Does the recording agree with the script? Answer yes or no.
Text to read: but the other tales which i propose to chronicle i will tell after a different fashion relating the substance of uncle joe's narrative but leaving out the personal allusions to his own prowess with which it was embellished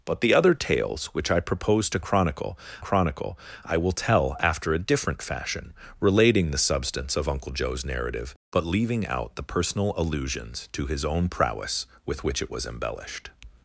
no